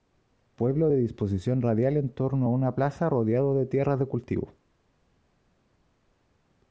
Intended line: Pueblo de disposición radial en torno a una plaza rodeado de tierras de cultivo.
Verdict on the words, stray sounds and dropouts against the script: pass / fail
pass